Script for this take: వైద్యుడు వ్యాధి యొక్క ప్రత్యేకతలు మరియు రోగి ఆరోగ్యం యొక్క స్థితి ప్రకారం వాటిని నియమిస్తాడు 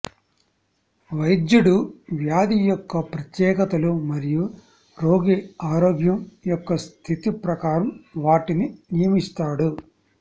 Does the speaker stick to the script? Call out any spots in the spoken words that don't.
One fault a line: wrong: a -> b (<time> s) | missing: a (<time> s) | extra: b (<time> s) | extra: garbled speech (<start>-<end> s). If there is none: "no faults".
no faults